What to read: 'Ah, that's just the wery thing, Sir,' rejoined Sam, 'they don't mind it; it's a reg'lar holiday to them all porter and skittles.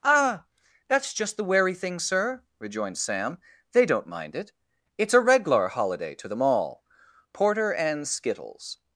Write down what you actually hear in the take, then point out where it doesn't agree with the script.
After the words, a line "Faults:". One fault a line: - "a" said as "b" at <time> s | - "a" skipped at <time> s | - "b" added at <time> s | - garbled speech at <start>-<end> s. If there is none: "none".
'Ah, that's just the wery thing, Sir,' rejoined Sam, 'they don't mind it; it's a reg'lar holiday to them all porter and skittles.
Faults:
none